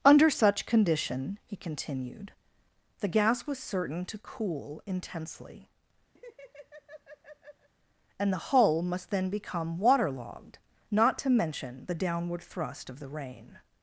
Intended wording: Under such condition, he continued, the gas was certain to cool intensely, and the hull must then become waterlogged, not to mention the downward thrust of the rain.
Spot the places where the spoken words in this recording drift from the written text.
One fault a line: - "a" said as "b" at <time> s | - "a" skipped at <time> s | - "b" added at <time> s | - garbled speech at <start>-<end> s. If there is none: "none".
none